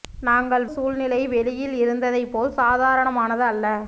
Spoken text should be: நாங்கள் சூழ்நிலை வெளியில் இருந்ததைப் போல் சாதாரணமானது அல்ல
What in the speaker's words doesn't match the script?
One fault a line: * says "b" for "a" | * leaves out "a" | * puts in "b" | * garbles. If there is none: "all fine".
all fine